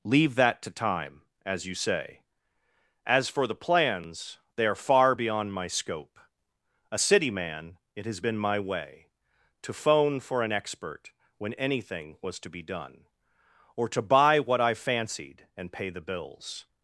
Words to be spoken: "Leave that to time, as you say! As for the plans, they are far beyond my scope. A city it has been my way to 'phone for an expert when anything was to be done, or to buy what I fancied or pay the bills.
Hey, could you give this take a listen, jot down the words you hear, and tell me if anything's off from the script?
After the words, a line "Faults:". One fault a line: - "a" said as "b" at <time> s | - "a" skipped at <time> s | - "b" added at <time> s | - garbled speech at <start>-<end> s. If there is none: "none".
"Leave that to time, as you say! As for the plans, they are far beyond my scope. A city man, it has been my way to 'phone for an expert when anything was to be done, or to buy what I fancied and pay the bills.
Faults:
- "man" added at 7.3 s
- "or" said as "and" at 15.6 s